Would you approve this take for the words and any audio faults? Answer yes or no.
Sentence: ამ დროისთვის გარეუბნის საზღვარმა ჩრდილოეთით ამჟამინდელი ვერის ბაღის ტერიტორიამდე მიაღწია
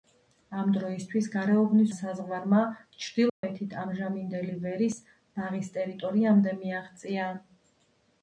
no